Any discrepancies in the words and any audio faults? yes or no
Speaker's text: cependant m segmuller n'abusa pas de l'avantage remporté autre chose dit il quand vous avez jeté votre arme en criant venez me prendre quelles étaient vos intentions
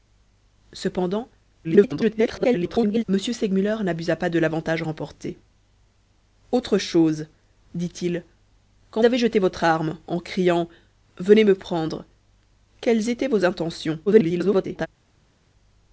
yes